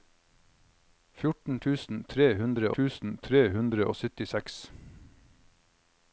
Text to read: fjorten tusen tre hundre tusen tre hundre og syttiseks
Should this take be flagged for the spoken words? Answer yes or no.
no